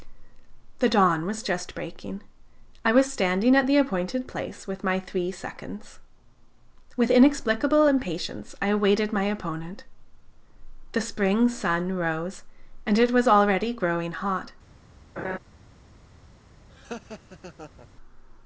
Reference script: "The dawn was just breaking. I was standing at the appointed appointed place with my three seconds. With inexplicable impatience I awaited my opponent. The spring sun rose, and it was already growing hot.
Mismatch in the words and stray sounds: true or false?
true